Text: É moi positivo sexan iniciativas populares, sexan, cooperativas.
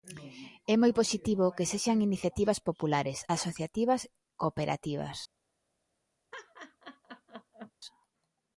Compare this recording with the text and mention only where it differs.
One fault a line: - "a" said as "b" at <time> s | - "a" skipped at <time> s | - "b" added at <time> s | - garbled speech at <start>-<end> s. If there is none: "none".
- "que" added at 1.6 s
- "sexan" said as "asociativas" at 3.4 s